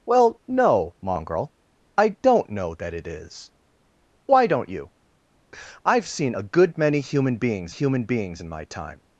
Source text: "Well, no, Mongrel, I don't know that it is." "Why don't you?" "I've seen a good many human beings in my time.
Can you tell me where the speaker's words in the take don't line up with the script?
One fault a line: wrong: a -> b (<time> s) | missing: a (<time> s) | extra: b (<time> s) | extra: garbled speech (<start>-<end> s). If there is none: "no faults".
extra: human beings (7.7 s)